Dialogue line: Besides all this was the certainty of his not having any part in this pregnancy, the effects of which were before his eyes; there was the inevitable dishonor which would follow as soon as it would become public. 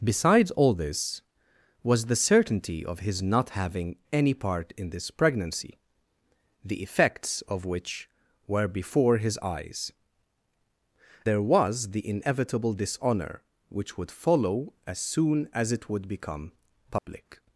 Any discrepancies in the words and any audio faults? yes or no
yes